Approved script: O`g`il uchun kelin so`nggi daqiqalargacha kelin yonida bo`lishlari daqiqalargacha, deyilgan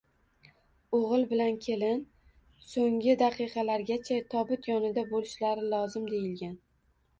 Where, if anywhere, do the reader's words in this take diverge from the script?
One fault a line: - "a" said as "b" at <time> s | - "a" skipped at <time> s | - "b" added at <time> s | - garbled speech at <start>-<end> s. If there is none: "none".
- "uchun" said as "bilan" at 1.3 s
- "kelin" said as "tobut" at 4.3 s
- "daqiqalargacha" said as "lozim" at 5.8 s